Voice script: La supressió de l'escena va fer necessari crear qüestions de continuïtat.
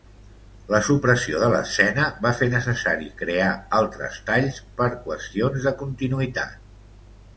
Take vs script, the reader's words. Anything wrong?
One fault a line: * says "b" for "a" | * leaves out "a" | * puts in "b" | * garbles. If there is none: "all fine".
* puts in "altres talls per"